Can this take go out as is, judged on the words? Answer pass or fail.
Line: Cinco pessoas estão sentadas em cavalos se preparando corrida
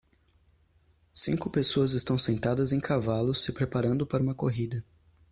fail